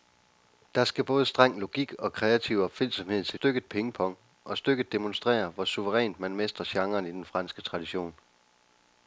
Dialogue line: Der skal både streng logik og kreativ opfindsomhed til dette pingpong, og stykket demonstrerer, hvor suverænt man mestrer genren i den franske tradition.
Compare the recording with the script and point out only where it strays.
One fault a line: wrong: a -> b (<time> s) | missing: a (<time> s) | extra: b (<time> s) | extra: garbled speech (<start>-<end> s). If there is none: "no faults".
wrong: dette -> stykket (3.3 s)